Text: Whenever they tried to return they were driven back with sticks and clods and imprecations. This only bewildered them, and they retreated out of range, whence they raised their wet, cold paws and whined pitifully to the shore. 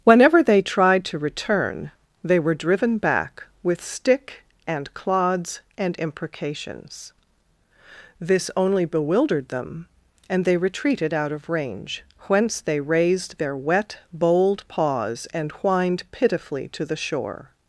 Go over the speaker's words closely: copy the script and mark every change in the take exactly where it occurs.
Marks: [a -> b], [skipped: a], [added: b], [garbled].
Whenever they tried to return they were driven back with [sticks -> stick] and clods and imprecations. This only bewildered them, and they retreated out of range, whence they raised their wet, [cold -> bold] paws and whined pitifully to the shore.